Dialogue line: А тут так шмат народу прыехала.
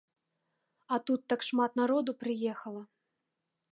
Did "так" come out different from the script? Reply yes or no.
no